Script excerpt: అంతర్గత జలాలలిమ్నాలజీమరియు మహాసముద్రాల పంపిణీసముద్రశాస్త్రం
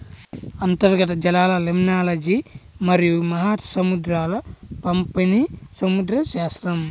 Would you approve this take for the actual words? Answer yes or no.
yes